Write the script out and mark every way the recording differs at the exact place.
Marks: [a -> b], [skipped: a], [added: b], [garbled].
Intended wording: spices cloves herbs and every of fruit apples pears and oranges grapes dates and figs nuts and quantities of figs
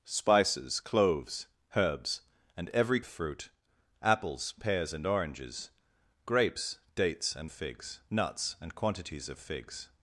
spices cloves herbs and every of fruit apples pears and oranges grapes dates and figs nuts and quantities of figs